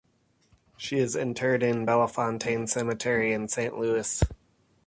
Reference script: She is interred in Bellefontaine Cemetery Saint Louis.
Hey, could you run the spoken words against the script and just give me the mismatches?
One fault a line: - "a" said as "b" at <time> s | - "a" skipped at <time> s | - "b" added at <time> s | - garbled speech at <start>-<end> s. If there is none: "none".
- "in" added at 3.3 s